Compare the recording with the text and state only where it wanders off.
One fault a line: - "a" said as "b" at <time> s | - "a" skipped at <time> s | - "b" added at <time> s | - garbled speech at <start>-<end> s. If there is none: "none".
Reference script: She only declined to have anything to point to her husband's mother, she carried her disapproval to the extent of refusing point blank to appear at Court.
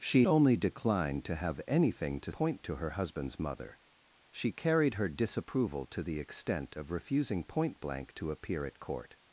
none